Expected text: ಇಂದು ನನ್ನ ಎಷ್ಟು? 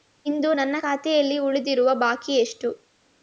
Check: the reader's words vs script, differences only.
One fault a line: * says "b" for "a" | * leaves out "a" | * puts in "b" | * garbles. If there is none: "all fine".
* puts in "ಖಾತೆಯಲ್ಲಿ ಉಳಿದಿರುವ ಬಾಕಿ"